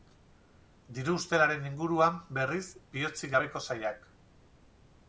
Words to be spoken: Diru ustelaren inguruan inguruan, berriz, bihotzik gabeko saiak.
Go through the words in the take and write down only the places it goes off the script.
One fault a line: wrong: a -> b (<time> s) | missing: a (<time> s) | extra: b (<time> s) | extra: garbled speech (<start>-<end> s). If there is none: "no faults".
missing: inguruan (2.2 s)